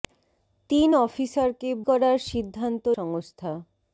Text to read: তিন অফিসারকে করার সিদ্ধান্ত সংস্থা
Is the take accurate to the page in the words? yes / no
yes